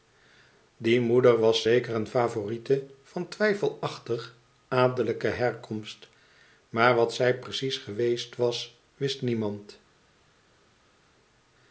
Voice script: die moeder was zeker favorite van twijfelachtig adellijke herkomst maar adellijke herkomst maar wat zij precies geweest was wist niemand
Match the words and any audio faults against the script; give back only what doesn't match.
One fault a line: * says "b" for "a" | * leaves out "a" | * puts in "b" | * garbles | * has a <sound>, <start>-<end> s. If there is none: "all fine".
* puts in "een"
* leaves out "adellijke herkomst maar"